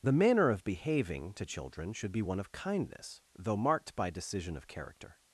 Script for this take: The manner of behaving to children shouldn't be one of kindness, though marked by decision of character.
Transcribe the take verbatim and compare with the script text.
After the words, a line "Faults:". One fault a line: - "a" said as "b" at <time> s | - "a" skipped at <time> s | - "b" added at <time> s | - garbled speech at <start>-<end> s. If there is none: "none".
The manner of behaving to children should be one of kindness, though marked by decision of character.
Faults:
- "shouldn't" said as "should" at 1.9 s